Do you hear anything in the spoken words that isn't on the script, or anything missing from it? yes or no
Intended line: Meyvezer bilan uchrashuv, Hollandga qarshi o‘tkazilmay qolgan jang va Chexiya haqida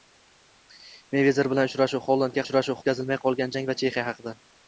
yes